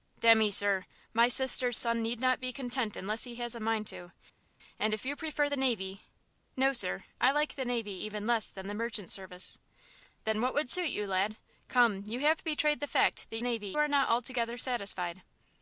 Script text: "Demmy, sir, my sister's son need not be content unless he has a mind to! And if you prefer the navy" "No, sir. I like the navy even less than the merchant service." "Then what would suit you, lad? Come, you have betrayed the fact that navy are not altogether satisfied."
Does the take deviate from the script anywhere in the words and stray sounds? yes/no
no